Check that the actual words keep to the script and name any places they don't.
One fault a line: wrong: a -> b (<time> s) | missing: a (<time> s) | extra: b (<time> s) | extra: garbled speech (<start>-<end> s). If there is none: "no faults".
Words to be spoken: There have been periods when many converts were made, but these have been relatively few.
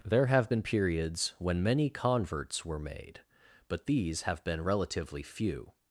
no faults